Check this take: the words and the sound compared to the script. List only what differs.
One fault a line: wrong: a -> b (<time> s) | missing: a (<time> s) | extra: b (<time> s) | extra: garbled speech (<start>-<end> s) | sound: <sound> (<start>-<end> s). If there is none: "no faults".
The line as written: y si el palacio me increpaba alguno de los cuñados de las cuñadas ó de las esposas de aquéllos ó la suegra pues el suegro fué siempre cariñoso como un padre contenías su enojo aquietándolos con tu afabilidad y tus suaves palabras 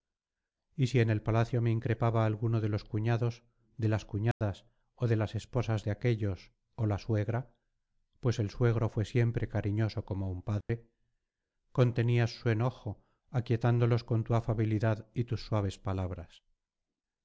extra: en (1.0 s)
sound: dropout (4.3-4.4 s)
sound: dropout (10.6-10.7 s)